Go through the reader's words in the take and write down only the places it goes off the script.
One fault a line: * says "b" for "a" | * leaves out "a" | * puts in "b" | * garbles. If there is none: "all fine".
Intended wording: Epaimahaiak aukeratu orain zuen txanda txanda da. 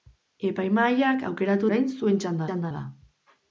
all fine